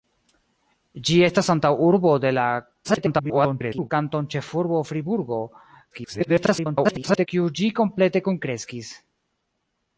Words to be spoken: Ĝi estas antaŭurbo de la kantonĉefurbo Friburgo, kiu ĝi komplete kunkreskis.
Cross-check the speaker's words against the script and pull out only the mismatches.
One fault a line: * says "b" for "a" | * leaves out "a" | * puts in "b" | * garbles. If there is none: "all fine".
* garbles
* garbles